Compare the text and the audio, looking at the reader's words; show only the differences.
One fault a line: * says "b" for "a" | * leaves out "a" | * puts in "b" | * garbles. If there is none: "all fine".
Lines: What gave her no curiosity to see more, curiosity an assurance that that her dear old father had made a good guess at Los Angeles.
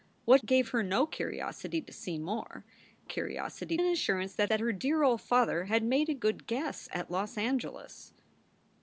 all fine